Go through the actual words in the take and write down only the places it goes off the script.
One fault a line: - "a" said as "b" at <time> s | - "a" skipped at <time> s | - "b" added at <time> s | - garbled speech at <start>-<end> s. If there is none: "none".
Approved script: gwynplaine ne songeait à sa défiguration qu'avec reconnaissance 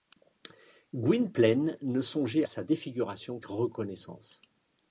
- "à" skipped at 2.4 s
- "qu'avec" skipped at 3.4 s